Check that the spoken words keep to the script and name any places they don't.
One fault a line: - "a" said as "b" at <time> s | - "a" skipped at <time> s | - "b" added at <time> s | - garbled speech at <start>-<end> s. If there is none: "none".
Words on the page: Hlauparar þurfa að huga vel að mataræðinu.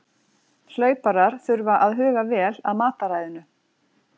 none